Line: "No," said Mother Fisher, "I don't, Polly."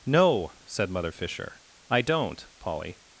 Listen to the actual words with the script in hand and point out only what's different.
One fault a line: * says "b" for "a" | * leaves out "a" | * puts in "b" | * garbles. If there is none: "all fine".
all fine